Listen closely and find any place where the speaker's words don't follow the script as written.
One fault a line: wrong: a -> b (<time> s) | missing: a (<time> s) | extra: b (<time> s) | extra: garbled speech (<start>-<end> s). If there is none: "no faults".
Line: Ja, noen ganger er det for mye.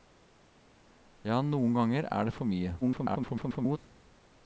extra: garbled speech (2.8-3.8 s)